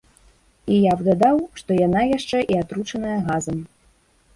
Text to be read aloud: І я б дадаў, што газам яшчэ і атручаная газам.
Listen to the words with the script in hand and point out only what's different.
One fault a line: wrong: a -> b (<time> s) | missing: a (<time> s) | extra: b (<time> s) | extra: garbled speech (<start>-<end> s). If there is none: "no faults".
wrong: газам -> яна (1.9 s)